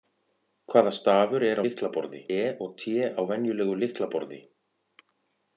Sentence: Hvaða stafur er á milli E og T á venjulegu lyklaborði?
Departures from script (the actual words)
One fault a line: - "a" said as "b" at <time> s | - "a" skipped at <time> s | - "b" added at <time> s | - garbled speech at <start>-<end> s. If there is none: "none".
- "milli" said as "lyklaborði" at 1.7 s